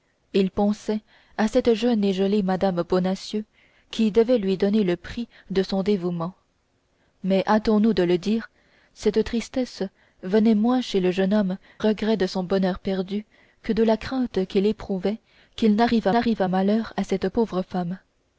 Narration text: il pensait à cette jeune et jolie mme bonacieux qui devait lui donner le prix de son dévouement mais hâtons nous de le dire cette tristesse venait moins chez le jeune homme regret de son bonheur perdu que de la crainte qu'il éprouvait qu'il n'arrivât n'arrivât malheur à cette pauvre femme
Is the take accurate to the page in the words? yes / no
yes